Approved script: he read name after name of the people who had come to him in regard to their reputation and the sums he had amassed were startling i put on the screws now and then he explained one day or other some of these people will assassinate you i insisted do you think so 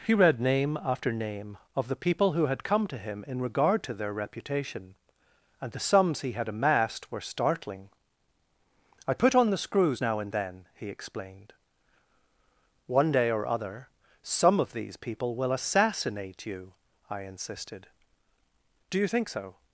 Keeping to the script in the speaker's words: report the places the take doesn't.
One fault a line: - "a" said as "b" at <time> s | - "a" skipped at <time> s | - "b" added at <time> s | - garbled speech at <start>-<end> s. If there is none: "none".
none